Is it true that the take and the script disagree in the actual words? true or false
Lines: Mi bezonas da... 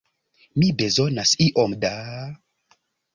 true